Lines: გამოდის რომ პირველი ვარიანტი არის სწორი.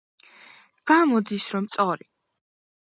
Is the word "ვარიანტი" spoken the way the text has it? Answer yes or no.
no